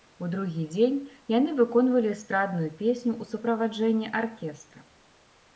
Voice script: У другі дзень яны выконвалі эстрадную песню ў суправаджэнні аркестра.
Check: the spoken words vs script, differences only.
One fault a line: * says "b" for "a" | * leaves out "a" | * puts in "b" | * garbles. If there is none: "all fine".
all fine